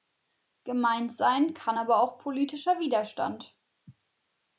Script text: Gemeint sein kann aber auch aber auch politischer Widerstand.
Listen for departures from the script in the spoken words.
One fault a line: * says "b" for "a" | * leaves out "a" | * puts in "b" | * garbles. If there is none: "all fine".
* leaves out "aber auch"